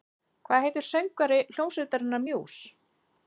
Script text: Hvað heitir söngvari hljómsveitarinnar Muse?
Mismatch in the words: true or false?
false